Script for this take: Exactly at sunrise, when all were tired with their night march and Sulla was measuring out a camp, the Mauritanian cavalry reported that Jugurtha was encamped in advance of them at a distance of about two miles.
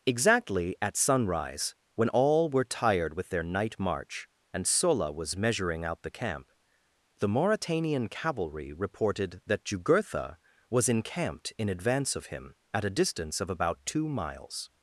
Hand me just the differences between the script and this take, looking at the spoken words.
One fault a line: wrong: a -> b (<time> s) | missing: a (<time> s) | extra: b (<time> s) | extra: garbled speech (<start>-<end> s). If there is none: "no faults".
wrong: a -> the (6.0 s)
wrong: them -> him (12.3 s)